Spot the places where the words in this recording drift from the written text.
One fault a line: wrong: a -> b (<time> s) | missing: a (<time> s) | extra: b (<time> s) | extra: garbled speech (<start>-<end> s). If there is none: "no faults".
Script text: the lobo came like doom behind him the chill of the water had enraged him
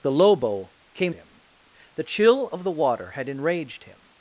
missing: like doom behind (1.1 s)